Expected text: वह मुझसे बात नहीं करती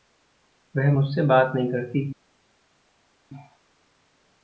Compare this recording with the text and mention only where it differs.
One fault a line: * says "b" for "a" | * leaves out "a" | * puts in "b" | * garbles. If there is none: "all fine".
all fine